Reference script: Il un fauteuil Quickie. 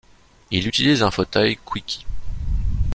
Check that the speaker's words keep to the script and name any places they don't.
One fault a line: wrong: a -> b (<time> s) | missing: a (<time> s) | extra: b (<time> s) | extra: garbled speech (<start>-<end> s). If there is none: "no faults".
extra: utilise (0.6 s)